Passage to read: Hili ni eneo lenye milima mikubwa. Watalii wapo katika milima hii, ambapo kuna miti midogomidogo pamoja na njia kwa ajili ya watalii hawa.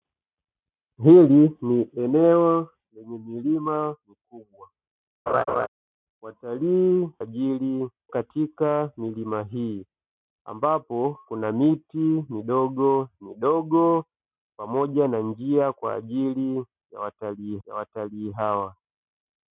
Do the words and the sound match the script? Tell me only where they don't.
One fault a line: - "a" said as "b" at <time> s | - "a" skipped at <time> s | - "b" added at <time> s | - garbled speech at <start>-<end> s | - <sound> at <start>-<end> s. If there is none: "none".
- laugh at 5.3-5.7 s
- "wapo" said as "ajili" at 7.2 s
- "ya watalii" added at 17.6 s